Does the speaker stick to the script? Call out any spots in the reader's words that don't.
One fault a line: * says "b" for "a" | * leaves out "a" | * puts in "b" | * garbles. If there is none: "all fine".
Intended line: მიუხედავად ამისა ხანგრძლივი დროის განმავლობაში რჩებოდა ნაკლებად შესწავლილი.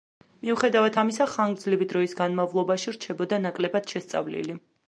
all fine